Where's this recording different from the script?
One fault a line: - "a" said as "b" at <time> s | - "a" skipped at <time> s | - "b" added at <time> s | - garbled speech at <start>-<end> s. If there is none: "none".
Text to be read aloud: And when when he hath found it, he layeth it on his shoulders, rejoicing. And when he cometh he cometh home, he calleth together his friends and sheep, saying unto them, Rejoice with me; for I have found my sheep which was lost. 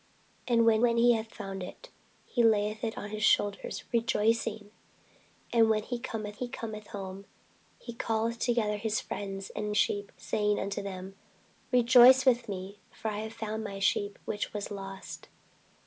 none